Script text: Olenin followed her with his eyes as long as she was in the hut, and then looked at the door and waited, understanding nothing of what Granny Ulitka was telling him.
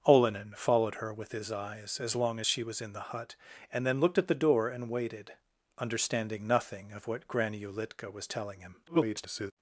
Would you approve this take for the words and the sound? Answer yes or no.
no